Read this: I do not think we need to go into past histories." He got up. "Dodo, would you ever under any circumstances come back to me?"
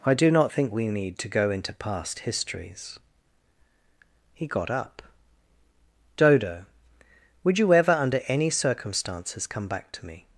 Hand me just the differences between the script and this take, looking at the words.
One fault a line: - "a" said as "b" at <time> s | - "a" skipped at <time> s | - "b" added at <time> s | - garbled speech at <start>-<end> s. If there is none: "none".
none